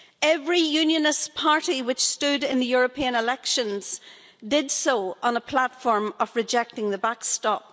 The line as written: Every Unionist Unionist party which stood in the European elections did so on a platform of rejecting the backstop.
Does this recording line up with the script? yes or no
no